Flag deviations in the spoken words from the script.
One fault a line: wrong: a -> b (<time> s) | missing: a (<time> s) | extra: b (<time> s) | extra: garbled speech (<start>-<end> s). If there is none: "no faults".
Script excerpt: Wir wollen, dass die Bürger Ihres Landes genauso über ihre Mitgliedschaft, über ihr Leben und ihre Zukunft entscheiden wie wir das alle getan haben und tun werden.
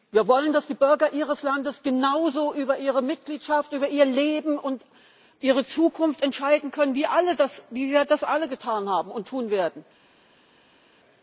extra: können (6.7 s)